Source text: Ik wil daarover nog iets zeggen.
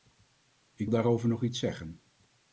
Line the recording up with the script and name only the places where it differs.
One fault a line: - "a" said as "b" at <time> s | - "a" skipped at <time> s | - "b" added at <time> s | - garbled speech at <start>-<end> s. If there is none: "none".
- "wil" skipped at 0.9 s